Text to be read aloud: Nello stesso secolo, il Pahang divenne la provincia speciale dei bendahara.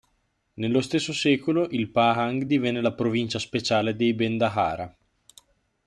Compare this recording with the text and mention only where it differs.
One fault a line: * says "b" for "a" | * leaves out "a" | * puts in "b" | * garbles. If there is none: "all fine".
all fine